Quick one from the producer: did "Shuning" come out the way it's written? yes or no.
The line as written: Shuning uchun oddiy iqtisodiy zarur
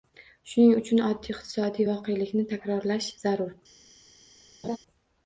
yes